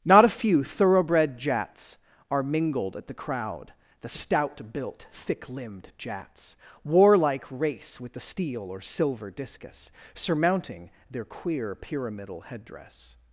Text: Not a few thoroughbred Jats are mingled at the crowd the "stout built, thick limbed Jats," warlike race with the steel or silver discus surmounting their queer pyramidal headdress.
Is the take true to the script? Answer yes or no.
yes